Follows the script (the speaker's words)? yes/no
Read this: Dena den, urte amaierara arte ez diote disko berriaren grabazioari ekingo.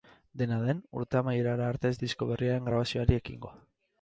no